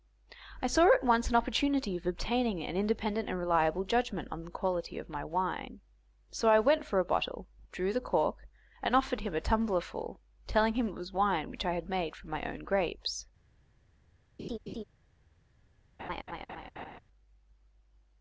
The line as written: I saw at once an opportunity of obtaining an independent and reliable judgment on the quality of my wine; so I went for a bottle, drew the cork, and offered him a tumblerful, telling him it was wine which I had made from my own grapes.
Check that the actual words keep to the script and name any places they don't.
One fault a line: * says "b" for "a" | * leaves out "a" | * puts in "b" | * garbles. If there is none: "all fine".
all fine